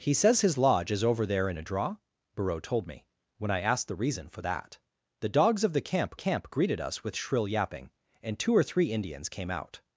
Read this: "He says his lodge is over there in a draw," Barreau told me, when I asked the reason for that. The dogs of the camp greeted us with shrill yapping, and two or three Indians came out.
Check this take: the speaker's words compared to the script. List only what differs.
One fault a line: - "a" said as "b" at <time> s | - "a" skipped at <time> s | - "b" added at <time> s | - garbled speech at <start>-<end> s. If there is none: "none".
- "camp" added at 6.1 s